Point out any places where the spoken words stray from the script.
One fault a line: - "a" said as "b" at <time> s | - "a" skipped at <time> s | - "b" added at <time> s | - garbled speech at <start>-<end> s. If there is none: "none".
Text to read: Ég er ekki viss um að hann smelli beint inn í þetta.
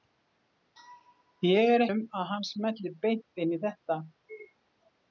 - "ekki viss" skipped at 1.9 s